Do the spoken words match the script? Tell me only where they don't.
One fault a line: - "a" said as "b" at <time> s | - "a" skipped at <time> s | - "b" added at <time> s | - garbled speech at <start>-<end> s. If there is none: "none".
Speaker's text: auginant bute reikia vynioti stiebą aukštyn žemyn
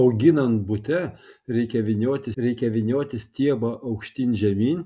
- "reikia vynioti" added at 2.4 s